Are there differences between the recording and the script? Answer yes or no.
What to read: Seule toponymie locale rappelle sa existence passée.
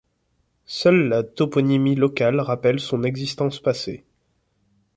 yes